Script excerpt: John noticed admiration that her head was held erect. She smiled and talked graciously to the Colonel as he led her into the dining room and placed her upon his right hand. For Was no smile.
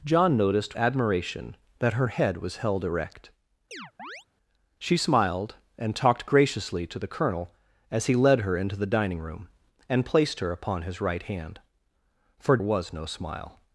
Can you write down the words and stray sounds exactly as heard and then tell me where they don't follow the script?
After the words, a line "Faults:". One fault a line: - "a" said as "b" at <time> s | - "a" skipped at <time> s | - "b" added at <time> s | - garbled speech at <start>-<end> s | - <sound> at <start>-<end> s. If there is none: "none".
John noticed admiration that her head was held erect. She smiled and talked graciously to the Colonel as he led her into the dining room and placed her upon his right hand. For Was no smile.
Faults:
- chirp at 3.7-4.3 s